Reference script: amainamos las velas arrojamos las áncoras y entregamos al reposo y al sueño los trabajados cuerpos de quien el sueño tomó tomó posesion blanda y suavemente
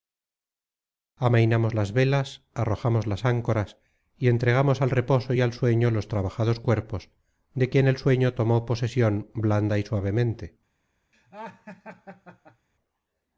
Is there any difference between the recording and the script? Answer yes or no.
yes